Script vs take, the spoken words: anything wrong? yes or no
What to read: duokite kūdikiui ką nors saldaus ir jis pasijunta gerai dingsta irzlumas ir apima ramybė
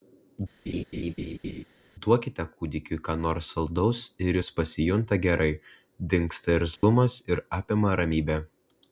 no